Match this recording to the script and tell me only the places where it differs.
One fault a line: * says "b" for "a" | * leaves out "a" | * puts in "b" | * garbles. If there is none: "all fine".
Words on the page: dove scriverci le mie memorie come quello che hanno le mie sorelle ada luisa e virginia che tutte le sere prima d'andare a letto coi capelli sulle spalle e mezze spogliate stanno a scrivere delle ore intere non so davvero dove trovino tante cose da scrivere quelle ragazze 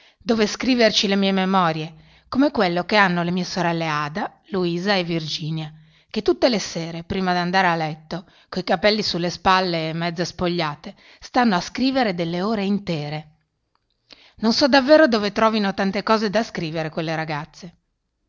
all fine